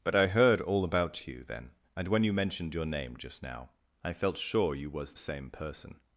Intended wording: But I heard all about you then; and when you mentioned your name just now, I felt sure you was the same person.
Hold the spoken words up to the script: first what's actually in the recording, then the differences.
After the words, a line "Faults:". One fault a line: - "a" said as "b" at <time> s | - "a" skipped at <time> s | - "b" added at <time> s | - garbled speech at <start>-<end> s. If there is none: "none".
But I heard all about you then; and when you mentioned your name just now, I felt sure you was same person.
Faults:
- "the" skipped at 5.1 s